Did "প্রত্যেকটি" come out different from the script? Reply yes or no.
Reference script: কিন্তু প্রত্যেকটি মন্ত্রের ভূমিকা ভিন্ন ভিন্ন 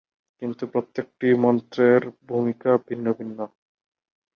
no